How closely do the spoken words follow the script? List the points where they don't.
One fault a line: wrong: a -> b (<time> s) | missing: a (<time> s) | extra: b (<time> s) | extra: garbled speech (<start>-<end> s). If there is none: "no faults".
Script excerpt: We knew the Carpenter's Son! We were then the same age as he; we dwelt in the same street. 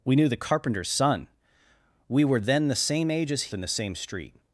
missing: he we dwelt (3.5 s)